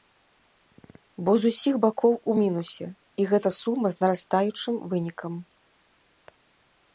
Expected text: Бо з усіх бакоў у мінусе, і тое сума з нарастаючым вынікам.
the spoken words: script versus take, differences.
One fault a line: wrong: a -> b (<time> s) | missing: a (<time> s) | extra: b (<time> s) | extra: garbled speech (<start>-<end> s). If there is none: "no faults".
wrong: тое -> гэта (3.3 s)